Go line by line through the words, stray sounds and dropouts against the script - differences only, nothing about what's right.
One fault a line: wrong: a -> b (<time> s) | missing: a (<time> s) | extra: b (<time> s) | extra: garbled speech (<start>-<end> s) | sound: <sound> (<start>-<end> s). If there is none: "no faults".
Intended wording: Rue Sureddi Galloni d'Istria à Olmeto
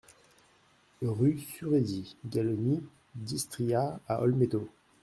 no faults